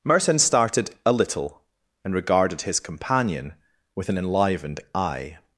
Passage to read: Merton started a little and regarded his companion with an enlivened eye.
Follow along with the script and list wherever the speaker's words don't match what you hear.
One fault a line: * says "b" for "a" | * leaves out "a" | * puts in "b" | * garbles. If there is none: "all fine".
all fine